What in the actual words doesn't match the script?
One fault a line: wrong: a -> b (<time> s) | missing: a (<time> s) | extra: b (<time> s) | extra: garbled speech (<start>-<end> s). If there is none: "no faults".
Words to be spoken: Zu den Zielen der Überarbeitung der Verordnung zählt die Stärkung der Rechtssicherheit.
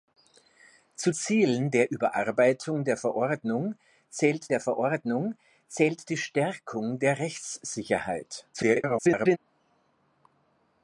missing: den (1.1 s)
extra: der Verordnung zählt (4.5 s)
extra: garbled speech (8.5-9.4 s)